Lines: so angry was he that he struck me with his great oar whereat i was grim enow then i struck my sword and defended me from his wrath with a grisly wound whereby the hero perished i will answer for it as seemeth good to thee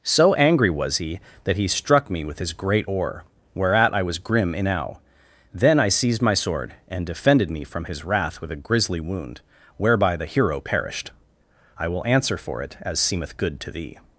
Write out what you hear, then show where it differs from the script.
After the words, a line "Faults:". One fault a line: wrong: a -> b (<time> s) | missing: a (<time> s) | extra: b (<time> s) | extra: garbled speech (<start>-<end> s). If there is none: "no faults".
so angry was he that he struck me with his great oar whereat i was grim enow then i seized my sword and defended me from his wrath with a grisly wound whereby the hero perished i will answer for it as seemeth good to thee
Faults:
wrong: struck -> seized (5.9 s)